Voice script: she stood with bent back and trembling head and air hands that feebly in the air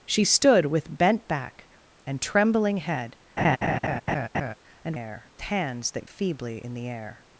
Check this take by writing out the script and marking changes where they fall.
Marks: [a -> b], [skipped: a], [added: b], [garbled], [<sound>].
she stood with bent back and trembling head [laugh] and air hands that feebly in the air